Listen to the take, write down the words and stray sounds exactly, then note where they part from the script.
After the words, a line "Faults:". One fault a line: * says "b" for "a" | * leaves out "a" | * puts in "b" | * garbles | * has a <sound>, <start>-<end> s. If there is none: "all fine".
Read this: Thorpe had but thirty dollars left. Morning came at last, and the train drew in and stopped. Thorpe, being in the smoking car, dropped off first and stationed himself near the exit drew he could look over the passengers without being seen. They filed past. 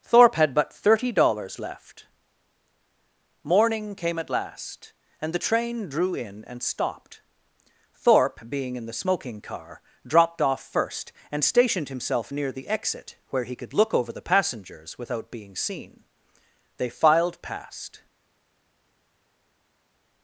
Thorpe had but thirty dollars left. Morning came at last, and the train drew in and stopped. Thorpe, being in the smoking car, dropped off first and stationed himself near the exit where he could look over the passengers without being seen. They filed past.
Faults:
* says "where" for "drew"